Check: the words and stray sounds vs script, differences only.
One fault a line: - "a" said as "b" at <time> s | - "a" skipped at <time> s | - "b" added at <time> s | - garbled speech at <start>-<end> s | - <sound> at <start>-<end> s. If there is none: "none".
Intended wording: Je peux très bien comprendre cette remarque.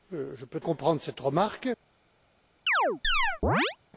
- "très bien" skipped at 0.6 s
- chirp at 2.7-3.8 s